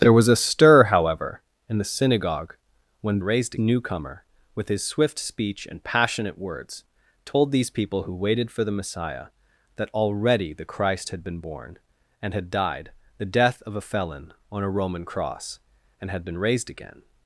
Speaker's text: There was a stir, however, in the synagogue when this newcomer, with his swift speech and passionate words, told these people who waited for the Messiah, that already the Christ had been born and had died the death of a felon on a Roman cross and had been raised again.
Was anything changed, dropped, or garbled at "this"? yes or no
yes